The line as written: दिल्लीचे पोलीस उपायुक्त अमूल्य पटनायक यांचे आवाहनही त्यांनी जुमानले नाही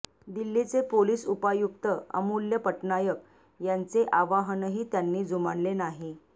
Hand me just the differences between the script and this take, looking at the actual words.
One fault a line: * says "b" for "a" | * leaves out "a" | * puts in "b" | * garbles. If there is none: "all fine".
all fine